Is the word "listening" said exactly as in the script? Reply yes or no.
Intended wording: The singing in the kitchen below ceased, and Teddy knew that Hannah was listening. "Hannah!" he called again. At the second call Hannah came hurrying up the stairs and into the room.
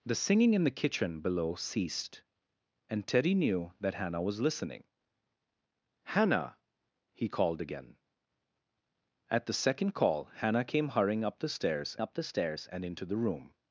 yes